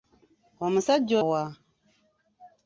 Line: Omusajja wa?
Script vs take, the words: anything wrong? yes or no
no